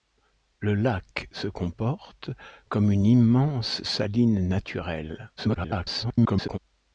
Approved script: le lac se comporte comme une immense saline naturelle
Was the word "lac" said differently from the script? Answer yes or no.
no